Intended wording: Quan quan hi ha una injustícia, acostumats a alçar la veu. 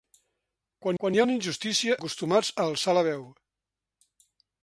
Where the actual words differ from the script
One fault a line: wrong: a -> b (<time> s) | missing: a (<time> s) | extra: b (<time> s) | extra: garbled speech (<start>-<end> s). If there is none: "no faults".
no faults